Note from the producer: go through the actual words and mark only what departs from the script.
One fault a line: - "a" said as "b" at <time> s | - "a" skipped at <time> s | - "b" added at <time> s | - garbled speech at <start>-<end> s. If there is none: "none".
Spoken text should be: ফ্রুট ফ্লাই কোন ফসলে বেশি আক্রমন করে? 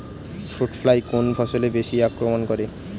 none